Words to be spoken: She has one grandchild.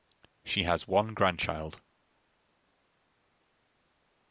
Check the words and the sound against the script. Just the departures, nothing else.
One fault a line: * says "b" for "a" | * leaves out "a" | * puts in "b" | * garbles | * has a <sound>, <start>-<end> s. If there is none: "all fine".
all fine